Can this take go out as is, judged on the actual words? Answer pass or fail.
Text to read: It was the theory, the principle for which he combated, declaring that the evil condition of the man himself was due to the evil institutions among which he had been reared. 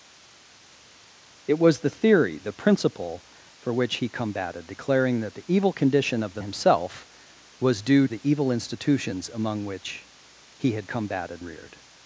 fail